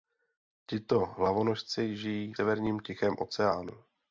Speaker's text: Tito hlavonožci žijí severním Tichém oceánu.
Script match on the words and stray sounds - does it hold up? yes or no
yes